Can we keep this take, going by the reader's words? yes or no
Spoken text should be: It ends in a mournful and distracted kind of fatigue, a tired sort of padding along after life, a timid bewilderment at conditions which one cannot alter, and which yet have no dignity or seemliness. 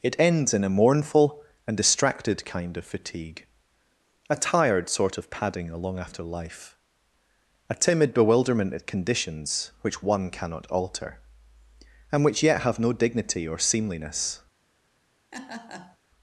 yes